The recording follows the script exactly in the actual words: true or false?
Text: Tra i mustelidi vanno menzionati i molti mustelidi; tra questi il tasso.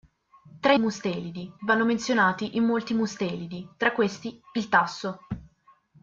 true